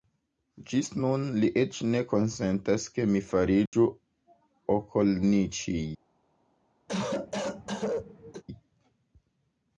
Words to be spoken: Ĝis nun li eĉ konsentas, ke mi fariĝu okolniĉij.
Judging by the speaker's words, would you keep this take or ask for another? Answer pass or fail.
fail